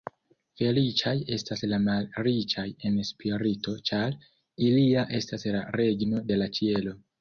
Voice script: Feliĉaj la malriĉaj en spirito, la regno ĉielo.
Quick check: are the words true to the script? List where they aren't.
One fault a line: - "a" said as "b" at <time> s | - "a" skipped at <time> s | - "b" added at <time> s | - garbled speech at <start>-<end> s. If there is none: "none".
- "estas" added at 1.4 s
- "ĉar ilia estas" added at 3.9 s
- "de la" added at 6.3 s